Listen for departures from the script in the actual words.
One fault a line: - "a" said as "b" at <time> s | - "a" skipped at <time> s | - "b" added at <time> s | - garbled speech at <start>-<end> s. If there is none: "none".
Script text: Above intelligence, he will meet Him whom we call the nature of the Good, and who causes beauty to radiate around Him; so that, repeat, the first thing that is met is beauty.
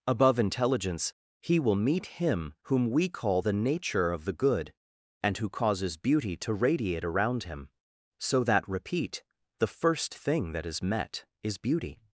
none